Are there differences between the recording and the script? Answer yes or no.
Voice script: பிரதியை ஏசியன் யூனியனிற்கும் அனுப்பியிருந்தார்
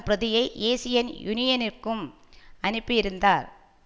no